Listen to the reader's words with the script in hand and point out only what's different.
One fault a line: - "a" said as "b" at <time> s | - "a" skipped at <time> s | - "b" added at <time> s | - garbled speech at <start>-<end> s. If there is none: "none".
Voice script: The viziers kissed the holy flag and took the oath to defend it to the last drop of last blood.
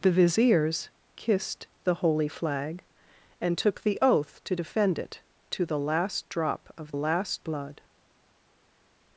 none